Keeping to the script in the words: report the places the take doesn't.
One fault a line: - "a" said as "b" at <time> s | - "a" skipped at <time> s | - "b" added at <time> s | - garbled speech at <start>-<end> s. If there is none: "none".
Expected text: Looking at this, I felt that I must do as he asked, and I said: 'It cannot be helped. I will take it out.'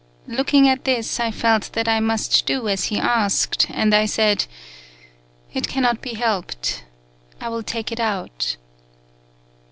none